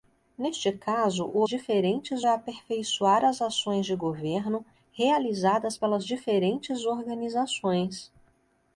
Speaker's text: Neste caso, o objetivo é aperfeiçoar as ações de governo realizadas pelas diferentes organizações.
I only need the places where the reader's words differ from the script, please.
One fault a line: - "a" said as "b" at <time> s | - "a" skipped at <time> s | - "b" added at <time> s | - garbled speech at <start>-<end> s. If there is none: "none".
- "objetivo" said as "diferentes" at 1.5 s